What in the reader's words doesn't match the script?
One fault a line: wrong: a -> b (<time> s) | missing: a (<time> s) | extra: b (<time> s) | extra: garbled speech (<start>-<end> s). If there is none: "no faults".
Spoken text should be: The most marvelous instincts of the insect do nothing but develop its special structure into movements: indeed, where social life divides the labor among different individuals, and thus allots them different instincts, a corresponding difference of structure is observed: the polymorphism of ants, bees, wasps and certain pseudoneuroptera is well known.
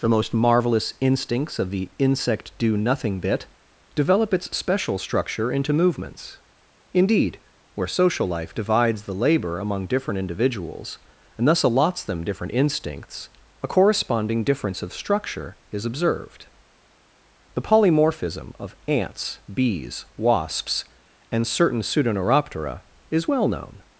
wrong: but -> bit (3.2 s)